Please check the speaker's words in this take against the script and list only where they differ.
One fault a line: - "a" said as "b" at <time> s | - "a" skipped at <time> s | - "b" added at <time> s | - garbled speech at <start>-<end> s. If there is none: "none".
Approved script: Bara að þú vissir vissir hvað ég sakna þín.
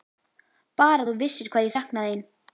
- "vissir" skipped at 1.5 s